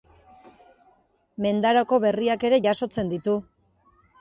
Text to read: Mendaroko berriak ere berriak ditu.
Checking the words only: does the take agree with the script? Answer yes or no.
no